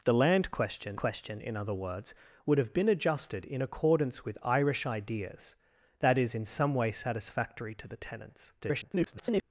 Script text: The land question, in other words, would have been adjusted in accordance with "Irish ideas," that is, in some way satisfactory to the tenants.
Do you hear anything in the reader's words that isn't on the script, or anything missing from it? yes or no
yes